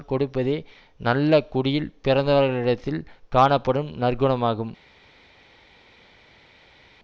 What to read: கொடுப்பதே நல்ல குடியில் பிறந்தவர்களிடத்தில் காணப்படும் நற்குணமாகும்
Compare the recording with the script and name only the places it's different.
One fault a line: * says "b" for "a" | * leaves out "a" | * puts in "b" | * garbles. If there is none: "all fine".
all fine